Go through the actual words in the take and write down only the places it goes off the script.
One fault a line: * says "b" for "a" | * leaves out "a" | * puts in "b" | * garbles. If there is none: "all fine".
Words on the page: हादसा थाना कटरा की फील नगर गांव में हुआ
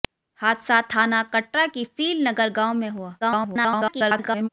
* garbles